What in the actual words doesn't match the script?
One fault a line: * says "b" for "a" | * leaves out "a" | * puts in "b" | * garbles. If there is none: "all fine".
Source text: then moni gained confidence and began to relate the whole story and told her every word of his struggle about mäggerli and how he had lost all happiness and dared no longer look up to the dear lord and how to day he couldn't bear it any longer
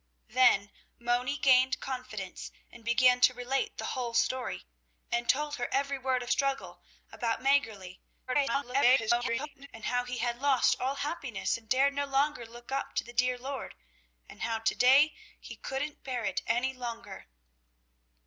* leaves out "his"
* garbles